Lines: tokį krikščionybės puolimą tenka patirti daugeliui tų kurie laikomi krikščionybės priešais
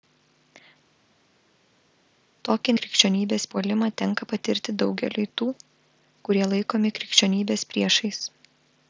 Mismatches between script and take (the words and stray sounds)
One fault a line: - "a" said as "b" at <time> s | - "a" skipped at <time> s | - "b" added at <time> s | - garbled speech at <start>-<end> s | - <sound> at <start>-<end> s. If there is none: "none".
none